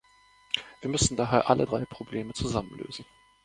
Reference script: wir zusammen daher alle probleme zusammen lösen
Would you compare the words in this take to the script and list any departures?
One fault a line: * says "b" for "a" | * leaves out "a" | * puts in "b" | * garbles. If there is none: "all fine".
* says "müssen" for "zusammen"
* puts in "drei"